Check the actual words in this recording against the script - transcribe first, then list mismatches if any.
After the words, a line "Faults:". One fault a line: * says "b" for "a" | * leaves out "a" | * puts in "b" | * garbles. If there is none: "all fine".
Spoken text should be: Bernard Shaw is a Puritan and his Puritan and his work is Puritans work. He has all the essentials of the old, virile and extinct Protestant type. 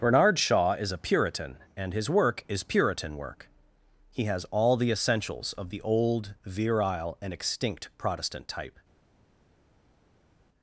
Bernard Shaw is a Puritan and his work is Puritan work. He has all the essentials of the old, virile and extinct Protestant type.
Faults:
* leaves out "Puritan and his"
* says "Puritan" for "Puritans"